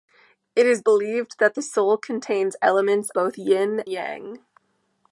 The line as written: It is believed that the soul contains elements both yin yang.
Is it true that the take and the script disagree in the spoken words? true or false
false